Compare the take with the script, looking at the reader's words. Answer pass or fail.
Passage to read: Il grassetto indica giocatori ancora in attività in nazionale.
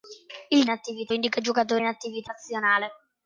fail